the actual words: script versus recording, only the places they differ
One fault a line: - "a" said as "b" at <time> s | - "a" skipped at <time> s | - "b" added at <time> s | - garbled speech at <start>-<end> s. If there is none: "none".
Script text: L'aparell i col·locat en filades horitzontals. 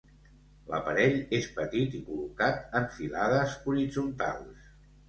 - "és petit" added at 1.4 s